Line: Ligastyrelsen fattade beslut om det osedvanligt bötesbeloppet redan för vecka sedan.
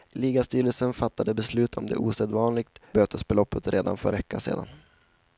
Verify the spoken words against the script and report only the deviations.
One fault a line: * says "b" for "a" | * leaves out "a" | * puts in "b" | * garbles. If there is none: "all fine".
all fine